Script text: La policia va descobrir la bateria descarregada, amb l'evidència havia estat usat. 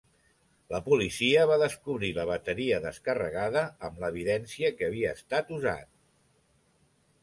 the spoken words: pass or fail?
fail